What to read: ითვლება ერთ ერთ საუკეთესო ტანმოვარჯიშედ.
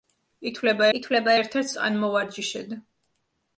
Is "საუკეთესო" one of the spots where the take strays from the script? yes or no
yes